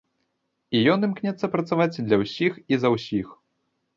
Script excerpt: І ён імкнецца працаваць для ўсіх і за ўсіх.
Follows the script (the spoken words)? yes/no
yes